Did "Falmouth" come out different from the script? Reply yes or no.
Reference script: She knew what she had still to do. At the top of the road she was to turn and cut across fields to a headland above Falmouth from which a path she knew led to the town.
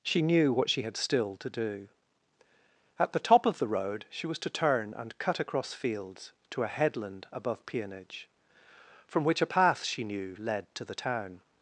yes